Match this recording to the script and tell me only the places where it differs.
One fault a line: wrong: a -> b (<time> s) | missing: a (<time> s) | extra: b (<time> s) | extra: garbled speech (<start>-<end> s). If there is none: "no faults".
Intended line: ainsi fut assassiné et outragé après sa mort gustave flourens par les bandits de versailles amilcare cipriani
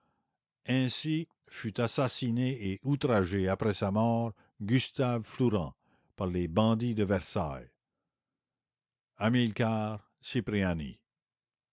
no faults